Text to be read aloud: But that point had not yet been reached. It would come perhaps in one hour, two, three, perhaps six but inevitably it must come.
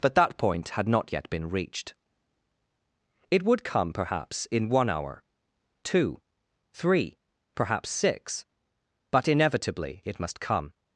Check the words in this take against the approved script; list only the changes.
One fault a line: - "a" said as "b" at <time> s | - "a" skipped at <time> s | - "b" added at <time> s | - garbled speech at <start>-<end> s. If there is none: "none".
none